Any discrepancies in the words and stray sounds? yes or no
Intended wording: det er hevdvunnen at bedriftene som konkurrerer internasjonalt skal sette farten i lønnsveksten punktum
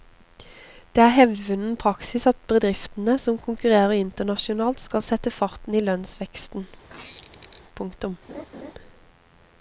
yes